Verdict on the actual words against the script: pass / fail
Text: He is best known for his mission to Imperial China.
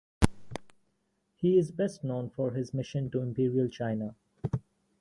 pass